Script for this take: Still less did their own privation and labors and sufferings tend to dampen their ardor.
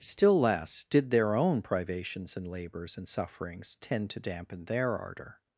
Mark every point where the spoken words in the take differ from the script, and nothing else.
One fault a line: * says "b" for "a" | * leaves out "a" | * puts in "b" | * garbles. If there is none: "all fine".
* says "privations" for "privation"